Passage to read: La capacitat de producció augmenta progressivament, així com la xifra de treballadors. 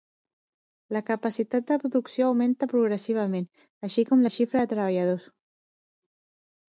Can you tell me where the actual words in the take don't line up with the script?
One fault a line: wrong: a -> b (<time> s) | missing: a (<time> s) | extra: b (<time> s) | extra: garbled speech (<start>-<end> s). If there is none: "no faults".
no faults